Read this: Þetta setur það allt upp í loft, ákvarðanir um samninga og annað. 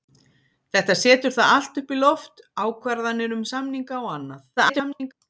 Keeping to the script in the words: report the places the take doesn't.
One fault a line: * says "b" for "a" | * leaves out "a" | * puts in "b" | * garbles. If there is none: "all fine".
* garbles